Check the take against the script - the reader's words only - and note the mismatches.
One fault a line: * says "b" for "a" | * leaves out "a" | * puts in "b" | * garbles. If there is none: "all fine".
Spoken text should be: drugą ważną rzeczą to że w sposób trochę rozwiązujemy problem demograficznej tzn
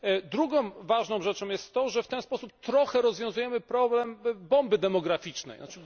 * puts in "jest"
* puts in "ten"
* puts in "bomby"